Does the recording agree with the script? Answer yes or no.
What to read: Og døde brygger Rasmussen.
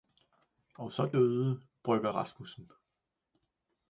no